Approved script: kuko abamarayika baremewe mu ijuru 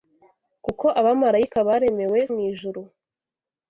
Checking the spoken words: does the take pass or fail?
pass